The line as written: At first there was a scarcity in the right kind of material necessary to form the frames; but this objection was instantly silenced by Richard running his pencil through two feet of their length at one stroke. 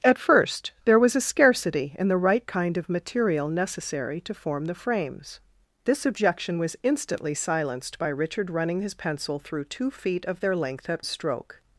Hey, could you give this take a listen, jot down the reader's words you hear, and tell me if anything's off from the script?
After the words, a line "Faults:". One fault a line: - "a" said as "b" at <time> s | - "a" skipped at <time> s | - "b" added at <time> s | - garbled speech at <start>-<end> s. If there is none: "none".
At first there was a scarcity in the right kind of material necessary to form the frames; this objection was instantly silenced by Richard running his pencil through two feet of their length at stroke.
Faults:
- "but" skipped at 5.4 s
- "one" skipped at 11.0 s